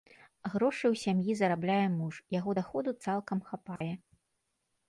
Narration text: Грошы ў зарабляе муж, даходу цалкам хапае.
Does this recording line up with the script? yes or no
no